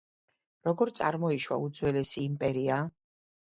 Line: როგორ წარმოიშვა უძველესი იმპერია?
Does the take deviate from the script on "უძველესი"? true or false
false